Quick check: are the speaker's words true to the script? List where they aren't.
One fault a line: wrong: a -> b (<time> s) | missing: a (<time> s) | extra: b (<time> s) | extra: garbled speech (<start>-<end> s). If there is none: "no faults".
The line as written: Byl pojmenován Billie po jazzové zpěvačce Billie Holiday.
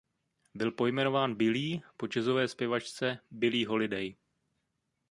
no faults